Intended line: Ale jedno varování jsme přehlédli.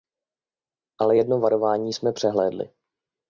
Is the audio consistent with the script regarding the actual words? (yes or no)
yes